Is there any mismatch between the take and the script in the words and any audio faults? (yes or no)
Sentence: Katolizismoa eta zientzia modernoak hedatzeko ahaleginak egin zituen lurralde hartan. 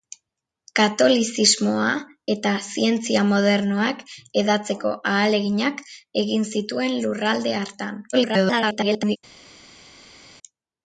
yes